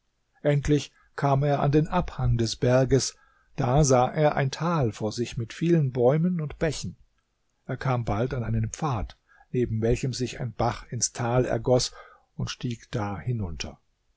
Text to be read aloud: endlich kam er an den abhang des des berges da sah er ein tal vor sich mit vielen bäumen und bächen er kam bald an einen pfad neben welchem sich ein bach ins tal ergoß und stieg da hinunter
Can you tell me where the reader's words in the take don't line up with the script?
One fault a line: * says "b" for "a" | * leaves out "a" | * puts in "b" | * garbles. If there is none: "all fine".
* leaves out "des"